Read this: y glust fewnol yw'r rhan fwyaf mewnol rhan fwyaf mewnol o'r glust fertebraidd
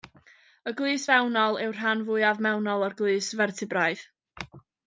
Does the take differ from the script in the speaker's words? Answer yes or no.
yes